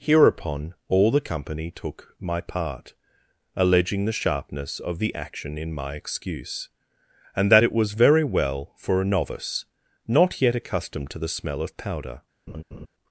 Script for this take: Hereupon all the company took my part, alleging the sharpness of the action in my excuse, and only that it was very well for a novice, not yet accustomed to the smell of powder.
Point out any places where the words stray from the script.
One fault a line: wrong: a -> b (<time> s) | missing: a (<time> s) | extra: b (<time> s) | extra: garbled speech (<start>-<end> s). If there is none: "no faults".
missing: only (7.5 s)